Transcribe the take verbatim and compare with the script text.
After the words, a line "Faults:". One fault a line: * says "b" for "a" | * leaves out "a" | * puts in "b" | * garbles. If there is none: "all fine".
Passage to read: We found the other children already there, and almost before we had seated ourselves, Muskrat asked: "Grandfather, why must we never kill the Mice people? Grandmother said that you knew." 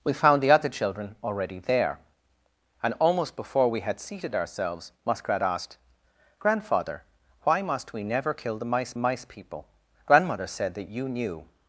We found the other children already there, and almost before we had seated ourselves, Muskrat asked: "Grandfather, why must we never kill the Mice Mice people? Grandmother said that you knew."
Faults:
* puts in "Mice"